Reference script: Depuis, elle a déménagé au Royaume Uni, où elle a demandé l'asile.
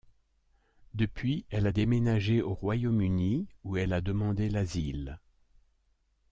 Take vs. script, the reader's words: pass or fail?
pass